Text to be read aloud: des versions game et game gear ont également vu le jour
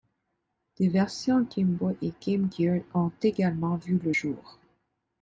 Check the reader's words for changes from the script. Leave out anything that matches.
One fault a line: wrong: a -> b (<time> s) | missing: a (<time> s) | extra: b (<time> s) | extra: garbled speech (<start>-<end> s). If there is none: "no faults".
extra: boy (1.7 s)